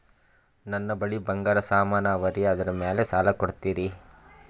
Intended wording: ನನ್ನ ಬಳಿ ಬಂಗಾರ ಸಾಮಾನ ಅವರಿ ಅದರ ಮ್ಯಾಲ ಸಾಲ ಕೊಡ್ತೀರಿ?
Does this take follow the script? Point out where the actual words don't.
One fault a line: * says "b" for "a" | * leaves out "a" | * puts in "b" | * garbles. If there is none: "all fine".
all fine